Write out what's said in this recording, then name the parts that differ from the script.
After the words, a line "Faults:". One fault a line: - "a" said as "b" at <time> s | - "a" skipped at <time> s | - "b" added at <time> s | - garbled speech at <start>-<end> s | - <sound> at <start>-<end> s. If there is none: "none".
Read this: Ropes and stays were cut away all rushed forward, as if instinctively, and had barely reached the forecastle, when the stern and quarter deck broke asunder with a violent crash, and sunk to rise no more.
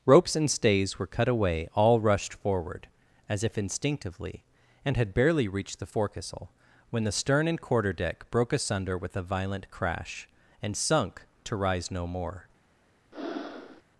Ropes and stays were cut away all rushed forward, as if instinctively, and had barely reached the forecastle, when the stern and quarter deck broke asunder with a violent crash, and sunk to rise no more.
Faults:
- breath at 13.1-13.8 s